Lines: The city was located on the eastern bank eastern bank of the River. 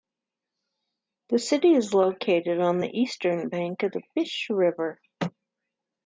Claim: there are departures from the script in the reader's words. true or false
true